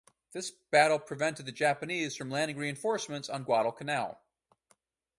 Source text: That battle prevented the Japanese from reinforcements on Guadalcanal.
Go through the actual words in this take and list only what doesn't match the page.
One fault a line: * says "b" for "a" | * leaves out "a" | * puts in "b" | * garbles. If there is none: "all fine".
* says "This" for "That"
* puts in "landing"